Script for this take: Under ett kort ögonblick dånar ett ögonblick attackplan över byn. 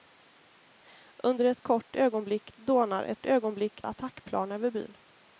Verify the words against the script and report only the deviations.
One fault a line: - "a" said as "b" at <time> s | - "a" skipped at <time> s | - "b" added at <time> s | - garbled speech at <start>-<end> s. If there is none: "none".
none